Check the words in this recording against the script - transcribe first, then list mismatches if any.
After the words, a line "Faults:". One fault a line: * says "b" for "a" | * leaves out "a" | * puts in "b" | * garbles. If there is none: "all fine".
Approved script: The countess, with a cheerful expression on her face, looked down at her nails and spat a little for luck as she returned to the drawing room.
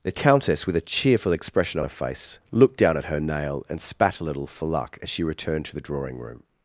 The countess, with a cheerful expression on her face, looked down at her nail and spat a little for luck as she returned to the drawing room.
Faults:
* says "nail" for "nails"